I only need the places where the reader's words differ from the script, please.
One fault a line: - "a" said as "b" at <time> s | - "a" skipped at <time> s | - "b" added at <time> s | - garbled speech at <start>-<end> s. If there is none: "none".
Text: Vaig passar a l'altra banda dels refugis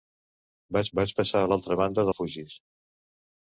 - "vaig" added at 1.0 s
- "dels" skipped at 2.1 s